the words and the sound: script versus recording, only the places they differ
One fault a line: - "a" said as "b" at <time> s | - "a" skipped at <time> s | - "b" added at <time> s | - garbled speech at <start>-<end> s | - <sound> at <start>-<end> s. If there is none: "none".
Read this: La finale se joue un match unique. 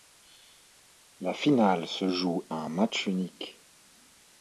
none